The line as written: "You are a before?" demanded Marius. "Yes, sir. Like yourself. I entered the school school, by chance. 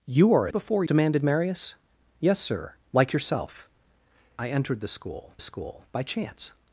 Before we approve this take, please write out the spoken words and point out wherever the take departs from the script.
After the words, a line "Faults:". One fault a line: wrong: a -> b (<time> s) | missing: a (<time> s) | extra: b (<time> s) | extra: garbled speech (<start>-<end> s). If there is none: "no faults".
"You are a before?" demanded Marius. "Yes, sir. Like yourself. I entered the school school, by chance.
Faults:
no faults